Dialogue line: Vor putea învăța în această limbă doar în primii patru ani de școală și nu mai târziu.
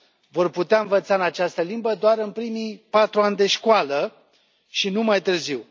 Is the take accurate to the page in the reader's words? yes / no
yes